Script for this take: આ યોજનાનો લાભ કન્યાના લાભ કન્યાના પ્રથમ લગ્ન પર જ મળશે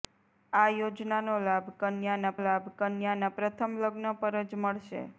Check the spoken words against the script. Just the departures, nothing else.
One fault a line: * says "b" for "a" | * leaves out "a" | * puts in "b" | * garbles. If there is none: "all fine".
all fine